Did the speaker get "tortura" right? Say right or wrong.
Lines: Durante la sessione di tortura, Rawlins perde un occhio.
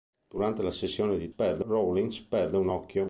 wrong